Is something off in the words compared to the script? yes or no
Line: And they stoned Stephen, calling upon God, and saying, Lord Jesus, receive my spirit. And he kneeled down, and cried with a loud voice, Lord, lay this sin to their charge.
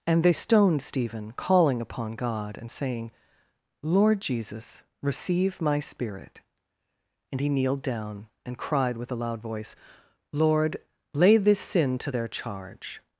no